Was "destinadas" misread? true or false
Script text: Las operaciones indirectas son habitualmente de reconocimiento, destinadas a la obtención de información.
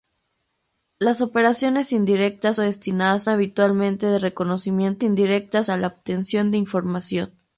true